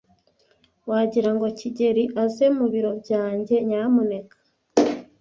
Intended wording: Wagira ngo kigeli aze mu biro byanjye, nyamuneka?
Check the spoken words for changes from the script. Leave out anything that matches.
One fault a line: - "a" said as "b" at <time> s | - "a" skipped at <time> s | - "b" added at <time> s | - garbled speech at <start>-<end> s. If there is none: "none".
none